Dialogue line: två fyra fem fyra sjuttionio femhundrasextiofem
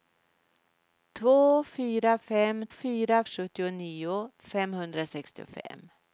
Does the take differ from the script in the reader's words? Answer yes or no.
no